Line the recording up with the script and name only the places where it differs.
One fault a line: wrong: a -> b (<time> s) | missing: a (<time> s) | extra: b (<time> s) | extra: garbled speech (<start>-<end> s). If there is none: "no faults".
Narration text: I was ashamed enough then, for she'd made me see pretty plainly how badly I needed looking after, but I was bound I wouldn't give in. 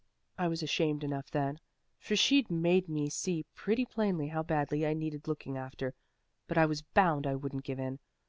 no faults